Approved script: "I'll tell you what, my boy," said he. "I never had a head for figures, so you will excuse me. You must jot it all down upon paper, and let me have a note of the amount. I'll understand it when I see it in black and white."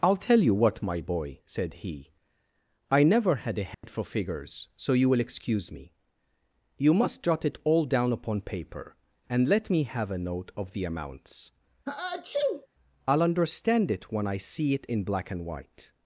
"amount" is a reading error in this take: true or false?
true